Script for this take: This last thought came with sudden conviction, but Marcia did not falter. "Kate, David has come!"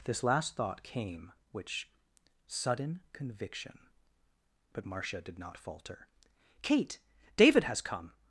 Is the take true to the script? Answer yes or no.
no